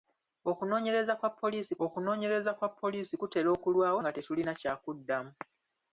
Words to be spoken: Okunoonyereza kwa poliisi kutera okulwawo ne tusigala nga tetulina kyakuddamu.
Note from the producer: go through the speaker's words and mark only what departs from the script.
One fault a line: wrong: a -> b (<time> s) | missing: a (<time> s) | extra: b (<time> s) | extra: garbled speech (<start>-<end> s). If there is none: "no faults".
extra: okunoonyereza kwa poliisi (1.9 s)
missing: ne tusigala (4.0 s)